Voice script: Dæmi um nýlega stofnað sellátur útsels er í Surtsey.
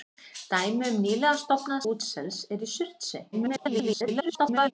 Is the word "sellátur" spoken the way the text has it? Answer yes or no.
no